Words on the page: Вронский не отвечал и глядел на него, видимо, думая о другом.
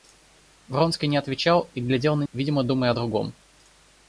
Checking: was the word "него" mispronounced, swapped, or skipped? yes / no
yes